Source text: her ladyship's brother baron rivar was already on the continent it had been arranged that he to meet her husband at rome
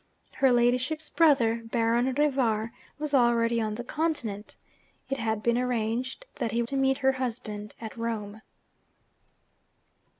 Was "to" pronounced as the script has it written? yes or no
yes